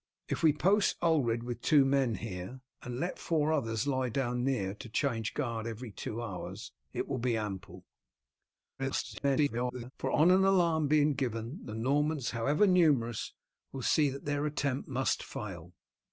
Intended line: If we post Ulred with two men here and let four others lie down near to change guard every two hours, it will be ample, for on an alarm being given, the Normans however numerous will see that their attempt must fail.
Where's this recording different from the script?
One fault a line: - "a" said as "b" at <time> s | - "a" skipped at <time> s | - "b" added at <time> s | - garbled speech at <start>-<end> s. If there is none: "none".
- garbled speech at 8.8-9.9 s